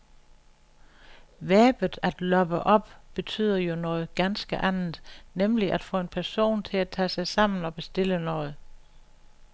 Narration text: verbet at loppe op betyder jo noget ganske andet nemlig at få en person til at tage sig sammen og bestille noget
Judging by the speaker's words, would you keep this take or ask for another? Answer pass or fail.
pass